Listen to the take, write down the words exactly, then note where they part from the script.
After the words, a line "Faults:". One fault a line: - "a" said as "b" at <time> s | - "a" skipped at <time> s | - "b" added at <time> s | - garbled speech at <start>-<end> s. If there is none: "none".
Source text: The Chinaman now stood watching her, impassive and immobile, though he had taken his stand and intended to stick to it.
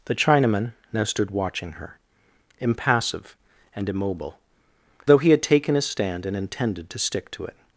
The Chinaman now stood watching her, impassive and immobile, though he had taken his stand and intended to stick to it.
Faults:
none